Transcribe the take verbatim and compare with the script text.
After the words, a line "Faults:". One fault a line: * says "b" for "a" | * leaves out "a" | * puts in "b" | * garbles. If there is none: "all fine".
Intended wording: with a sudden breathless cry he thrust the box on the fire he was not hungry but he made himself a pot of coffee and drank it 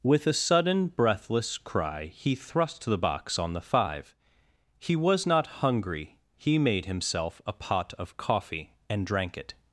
with a sudden breathless cry he thrust the box on the five he was not hungry he made himself a pot of coffee and drank it
Faults:
* says "five" for "fire"
* leaves out "but"